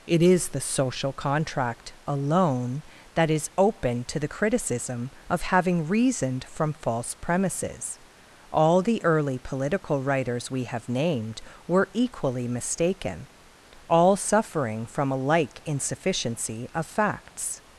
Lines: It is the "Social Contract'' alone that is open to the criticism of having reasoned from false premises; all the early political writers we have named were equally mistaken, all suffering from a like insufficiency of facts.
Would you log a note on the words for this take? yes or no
no